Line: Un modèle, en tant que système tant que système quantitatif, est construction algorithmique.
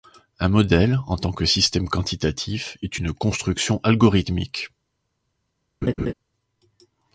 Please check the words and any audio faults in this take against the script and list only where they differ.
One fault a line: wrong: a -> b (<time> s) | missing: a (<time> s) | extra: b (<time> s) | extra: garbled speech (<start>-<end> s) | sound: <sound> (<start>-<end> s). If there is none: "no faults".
missing: tant que système (1.9 s)
extra: une (3.0 s)
sound: laugh (5.8-6.1 s)